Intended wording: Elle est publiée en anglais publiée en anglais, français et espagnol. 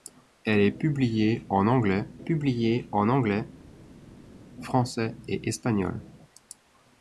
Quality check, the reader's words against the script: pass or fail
pass